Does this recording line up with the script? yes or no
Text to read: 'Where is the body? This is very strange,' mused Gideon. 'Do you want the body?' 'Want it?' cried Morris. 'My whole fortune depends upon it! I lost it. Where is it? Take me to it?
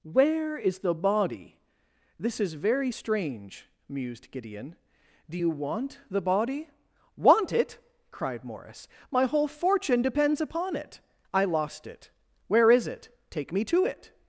yes